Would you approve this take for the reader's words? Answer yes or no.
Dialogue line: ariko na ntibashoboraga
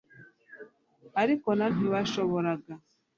yes